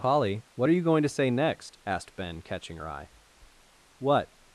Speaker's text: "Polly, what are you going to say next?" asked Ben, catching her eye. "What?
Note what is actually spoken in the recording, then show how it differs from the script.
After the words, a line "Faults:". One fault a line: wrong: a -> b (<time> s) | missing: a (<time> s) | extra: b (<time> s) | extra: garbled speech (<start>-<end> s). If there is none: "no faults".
"Polly, what are you going to say next?" asked Ben, catching her eye. "What?
Faults:
no faults